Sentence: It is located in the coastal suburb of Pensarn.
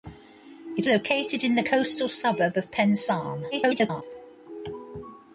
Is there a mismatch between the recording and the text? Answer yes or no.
yes